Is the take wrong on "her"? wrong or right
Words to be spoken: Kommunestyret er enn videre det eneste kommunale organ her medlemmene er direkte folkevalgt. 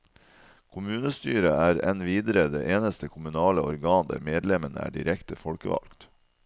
wrong